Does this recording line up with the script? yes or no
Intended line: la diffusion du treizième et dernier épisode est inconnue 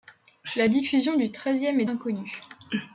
no